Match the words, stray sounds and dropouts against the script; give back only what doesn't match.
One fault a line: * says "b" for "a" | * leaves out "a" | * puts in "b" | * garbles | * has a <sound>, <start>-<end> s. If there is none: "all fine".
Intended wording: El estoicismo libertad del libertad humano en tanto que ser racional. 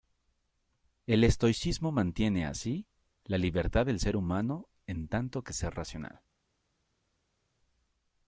* puts in "mantiene así la"
* says "ser" for "libertad"